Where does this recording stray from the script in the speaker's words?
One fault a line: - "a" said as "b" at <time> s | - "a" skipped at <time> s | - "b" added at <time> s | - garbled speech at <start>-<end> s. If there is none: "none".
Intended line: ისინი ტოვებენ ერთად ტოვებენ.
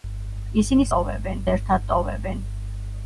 none